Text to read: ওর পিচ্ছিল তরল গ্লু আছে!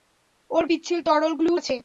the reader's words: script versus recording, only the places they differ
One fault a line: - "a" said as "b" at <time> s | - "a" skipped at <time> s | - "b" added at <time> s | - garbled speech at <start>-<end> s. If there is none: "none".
none